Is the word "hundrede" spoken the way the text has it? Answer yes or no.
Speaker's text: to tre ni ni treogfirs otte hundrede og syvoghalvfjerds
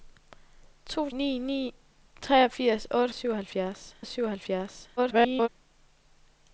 no